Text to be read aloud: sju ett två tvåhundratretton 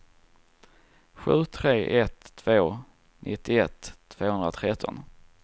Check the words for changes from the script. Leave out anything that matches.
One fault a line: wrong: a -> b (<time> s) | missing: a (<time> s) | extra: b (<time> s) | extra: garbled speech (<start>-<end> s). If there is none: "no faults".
extra: tre (1.4 s)
extra: nittioett (3.2 s)